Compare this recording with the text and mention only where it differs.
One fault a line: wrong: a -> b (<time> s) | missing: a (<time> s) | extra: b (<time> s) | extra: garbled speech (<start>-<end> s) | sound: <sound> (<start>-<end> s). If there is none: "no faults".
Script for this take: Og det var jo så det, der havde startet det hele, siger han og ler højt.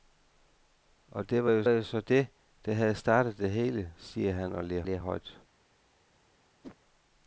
extra: jo (1.7 s)
extra: ler (4.8 s)
sound: whoosh (6.6-6.8 s)